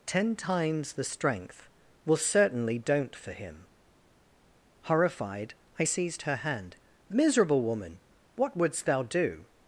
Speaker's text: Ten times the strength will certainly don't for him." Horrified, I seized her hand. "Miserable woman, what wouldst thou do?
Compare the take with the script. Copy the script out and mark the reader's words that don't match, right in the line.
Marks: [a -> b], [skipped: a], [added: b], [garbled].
Ten times the strength will certainly don't for him." Horrified, I seized her hand. "Miserable woman, what wouldst thou do?